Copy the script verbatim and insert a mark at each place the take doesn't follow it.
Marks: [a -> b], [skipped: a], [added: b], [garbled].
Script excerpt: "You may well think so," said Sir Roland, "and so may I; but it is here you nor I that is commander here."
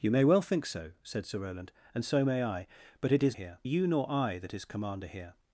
"You may well think so," said Sir Roland, "and so may I; but it is here you nor I that is commander here."